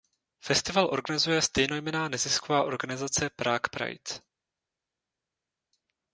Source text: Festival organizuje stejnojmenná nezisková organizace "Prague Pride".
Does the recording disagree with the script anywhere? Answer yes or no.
no